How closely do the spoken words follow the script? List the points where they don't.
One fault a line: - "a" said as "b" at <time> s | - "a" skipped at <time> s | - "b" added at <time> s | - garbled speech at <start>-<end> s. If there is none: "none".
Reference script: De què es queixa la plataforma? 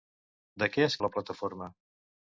- "queixa" skipped at 0.9 s